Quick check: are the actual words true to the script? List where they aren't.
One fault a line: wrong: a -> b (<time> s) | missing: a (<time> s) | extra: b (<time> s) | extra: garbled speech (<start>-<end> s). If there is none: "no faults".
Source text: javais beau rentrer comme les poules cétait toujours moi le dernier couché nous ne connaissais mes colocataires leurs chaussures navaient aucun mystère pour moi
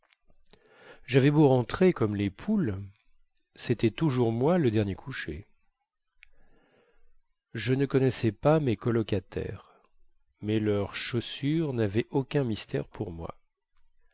wrong: nous -> je (7.5 s)
extra: pas (8.3 s)
extra: mais (10.4 s)